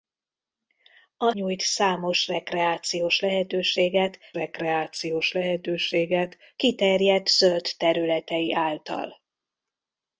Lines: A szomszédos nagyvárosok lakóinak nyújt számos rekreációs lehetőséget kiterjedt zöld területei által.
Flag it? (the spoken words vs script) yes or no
yes